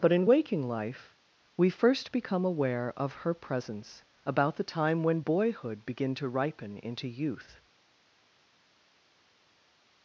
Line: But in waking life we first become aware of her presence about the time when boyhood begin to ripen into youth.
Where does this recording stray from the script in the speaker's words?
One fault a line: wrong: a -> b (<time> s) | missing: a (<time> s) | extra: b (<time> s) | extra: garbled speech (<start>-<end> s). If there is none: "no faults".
no faults